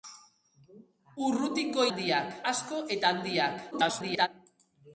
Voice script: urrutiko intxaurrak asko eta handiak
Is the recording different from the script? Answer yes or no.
yes